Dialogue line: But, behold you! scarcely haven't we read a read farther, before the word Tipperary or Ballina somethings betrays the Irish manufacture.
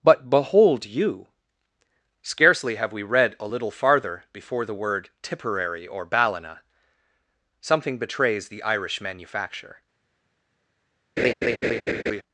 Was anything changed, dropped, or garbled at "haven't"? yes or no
yes